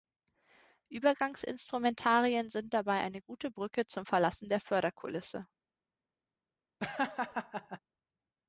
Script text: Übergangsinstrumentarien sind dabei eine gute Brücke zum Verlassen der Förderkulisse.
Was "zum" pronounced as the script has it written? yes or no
yes